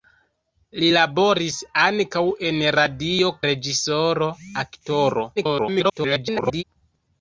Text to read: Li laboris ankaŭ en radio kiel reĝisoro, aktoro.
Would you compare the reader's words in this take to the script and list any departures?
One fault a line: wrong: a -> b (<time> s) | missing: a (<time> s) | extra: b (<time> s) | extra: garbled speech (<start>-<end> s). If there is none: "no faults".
missing: kiel (3.4 s)
extra: garbled speech (5.4-6.6 s)